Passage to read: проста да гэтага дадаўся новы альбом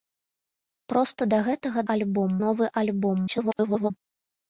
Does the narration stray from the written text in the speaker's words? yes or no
yes